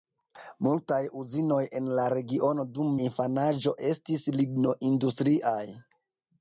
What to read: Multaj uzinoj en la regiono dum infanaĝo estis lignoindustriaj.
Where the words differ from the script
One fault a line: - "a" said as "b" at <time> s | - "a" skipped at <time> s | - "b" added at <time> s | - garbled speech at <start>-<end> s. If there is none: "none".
none